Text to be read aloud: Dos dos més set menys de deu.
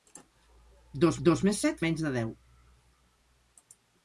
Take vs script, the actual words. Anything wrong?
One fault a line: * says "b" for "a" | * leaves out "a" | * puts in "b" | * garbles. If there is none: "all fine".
all fine